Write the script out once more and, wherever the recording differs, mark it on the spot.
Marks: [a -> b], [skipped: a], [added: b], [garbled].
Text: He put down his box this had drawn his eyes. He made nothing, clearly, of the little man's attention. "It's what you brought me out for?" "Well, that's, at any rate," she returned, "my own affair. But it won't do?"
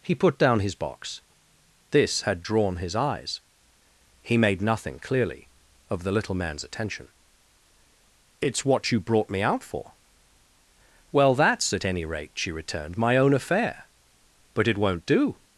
He put down his box this had drawn his eyes. He made nothing, clearly, of the little man's attention. "It's what you brought me out for?" "Well, that's, at any rate," she returned, "my own affair. But it won't do?"